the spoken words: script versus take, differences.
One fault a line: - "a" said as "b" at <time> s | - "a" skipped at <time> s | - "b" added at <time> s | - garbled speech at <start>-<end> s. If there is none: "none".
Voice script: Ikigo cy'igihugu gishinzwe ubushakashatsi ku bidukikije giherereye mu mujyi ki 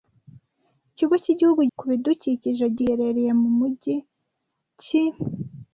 - "gishinzwe ubushakashatsi" skipped at 1.6 s